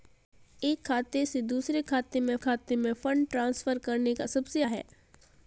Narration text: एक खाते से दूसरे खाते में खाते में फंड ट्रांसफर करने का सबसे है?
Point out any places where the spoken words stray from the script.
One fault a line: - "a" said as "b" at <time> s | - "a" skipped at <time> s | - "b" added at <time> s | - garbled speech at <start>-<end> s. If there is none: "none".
none